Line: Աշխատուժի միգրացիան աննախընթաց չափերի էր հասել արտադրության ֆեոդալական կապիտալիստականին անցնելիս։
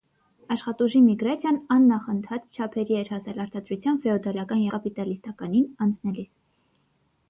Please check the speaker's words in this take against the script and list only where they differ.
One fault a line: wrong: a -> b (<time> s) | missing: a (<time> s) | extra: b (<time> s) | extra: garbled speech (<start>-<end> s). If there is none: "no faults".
no faults